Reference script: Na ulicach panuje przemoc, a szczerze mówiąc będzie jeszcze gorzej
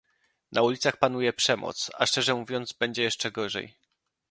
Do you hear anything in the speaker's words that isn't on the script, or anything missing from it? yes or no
no